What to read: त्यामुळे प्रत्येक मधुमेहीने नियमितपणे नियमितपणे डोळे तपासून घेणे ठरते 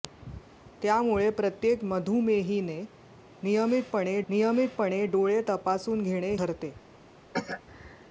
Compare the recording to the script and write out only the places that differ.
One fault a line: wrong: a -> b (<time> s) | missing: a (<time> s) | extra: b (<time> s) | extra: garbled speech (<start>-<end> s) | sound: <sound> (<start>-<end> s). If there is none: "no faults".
sound: cough (7.3-7.6 s)